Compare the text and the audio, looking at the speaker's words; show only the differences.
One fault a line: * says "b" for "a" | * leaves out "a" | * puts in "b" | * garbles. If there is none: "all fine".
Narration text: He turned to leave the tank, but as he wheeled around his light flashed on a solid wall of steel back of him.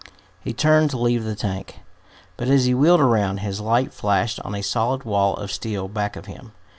all fine